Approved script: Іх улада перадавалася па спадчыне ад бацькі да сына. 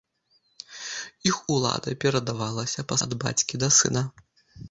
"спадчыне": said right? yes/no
no